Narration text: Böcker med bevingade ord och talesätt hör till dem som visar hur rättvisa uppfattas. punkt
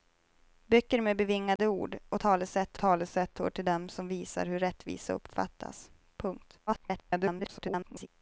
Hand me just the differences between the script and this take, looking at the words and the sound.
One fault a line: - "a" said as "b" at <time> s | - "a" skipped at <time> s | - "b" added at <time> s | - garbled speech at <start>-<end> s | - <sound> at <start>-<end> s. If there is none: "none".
- dropout at 1.6-1.6 s
- "talesätt" added at 2.8 s
- garbled speech at 6.7-8.1 s